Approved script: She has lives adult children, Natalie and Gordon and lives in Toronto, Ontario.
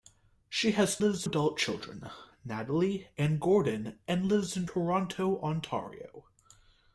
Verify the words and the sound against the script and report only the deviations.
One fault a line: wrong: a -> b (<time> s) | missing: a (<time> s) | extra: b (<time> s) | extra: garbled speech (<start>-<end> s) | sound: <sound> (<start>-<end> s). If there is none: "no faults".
no faults